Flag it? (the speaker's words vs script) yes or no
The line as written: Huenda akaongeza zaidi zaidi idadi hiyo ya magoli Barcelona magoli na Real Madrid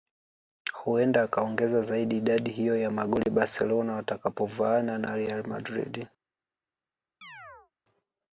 yes